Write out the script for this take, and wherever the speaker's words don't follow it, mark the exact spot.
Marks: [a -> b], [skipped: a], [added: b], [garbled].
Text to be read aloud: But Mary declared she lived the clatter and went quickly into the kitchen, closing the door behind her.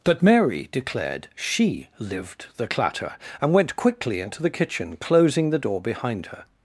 But Mary declared she lived the clatter and went quickly into the kitchen, closing the door behind her.